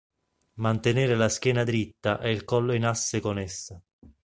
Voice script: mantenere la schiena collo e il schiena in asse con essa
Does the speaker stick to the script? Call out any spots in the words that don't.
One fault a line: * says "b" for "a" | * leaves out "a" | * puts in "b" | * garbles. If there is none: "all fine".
* says "dritta" for "collo"
* says "collo" for "schiena"